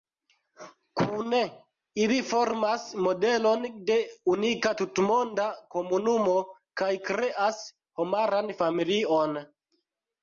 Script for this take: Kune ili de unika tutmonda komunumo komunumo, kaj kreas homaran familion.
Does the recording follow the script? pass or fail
fail